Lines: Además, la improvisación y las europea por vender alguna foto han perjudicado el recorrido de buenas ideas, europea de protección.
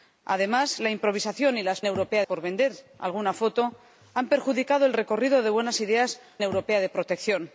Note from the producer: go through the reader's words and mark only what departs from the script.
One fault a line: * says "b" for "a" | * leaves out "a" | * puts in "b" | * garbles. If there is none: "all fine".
all fine